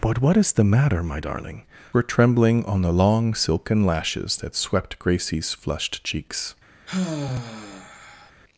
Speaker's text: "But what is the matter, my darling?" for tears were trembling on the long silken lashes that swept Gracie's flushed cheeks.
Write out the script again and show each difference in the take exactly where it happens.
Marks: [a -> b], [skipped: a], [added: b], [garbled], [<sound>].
"But what is the matter, my darling?" [skipped: for tears] were trembling on the long silken lashes that swept Gracie's flushed cheeks. [sigh]